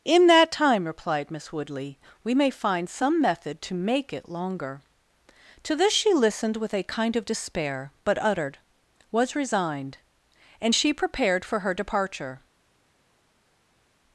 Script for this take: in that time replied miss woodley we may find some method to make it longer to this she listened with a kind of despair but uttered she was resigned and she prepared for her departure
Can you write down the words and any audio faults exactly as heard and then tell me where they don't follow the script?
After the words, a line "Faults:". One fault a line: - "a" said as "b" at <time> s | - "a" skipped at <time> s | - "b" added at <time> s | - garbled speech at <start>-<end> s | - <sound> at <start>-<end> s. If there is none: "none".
in that time replied miss woodley we may find some method to make it longer to this she listened with a kind of despair but uttered was resigned and she prepared for her departure
Faults:
- "she" skipped at 8.6 s